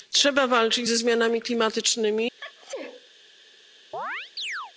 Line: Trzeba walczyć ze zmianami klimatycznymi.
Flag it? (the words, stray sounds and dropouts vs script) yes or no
yes